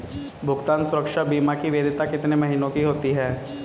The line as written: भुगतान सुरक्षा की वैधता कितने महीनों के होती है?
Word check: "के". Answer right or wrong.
wrong